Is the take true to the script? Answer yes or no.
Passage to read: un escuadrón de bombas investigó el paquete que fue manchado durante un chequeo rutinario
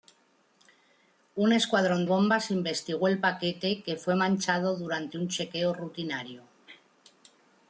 no